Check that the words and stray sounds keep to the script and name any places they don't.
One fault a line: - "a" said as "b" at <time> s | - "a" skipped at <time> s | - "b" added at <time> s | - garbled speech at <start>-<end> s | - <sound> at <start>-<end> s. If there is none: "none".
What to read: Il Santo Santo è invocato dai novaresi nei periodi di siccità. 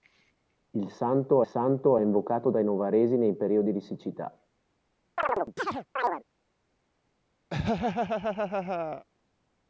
- chirp at 5.2-6.2 s
- laugh at 7.5-9.1 s